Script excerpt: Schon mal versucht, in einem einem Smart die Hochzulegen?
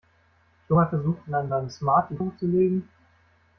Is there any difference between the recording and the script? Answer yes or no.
no